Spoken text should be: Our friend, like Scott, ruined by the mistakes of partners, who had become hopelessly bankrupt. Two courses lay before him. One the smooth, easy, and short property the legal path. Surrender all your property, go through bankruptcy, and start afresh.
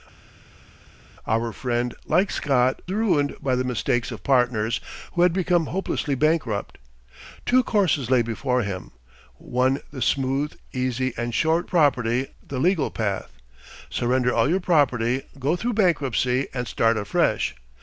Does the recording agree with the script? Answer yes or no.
yes